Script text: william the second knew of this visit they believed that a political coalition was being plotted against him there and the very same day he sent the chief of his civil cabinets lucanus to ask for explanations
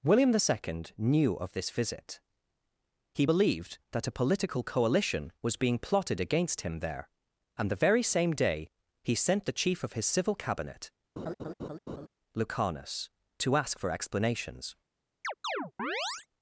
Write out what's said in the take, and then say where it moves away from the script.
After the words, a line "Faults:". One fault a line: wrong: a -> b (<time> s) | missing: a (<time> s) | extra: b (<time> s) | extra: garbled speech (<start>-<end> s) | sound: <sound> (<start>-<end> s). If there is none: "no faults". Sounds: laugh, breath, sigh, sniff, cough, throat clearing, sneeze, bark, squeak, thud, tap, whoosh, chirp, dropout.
william the second knew of this visit he believed that a political coalition was being plotted against him there and the very same day he sent the chief of his civil cabinet lucanus to ask for explanations
Faults:
wrong: they -> he (3.1 s)
wrong: cabinets -> cabinet (10.3 s)
sound: laugh (11.2-12.1 s)
sound: chirp (15.2-16.3 s)